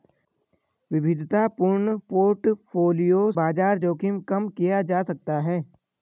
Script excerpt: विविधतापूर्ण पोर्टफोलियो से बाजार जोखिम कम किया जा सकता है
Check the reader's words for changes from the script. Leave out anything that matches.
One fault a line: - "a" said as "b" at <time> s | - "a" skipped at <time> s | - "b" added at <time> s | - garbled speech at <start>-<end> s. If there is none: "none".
- "से" skipped at 3.3 s